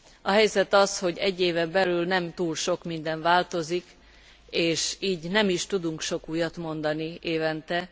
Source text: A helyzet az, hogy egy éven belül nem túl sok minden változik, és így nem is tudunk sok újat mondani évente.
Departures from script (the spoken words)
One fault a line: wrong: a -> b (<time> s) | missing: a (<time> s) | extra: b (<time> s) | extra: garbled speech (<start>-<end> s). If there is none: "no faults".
no faults